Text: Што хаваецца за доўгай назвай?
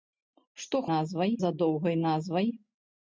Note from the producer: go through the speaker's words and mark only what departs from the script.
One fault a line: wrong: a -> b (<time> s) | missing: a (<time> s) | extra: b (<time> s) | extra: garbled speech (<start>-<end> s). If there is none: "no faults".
wrong: хаваецца -> назвай (0.9 s)